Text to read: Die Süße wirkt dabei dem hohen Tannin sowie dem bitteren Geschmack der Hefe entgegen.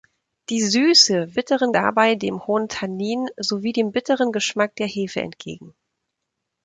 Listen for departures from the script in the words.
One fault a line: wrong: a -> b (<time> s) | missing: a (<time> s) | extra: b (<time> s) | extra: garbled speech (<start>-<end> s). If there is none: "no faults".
wrong: wirkt -> bitteren (1.3 s)